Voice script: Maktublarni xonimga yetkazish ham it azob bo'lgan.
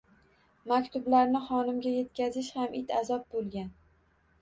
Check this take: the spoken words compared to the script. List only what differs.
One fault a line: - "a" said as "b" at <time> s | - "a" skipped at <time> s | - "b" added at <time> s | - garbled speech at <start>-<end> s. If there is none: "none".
none